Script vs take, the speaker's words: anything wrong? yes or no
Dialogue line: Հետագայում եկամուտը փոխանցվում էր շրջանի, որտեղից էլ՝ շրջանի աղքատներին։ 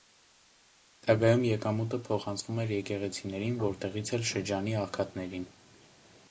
yes